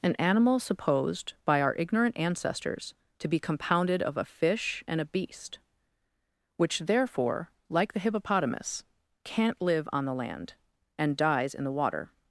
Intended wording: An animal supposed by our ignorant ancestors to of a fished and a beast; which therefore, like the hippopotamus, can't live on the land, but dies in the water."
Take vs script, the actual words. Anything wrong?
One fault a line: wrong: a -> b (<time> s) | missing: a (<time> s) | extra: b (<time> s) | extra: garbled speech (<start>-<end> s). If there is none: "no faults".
extra: be compounded (3.3 s)
wrong: fished -> fish (4.2 s)
wrong: but -> and (11.0 s)